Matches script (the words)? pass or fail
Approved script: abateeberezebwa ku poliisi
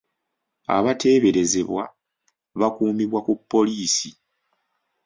fail